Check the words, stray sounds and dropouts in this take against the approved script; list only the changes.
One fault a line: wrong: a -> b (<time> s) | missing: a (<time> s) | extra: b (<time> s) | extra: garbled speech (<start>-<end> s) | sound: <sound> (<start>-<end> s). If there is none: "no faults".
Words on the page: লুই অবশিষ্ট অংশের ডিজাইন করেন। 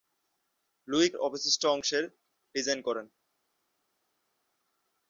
no faults